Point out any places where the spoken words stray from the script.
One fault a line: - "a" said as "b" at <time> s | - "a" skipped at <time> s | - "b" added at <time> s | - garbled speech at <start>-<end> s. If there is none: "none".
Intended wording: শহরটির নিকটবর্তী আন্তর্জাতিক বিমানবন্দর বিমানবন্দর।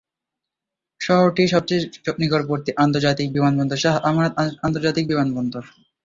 - "সবচেয়ে" added at 1.5 s
- "শাহ আমানত আন্তর্জাতিক" added at 3.8 s